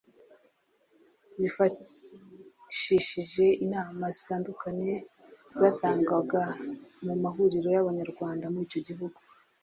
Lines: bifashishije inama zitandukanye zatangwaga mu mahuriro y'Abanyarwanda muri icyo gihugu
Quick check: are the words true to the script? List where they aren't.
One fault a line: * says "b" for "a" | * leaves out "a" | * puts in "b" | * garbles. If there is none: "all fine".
all fine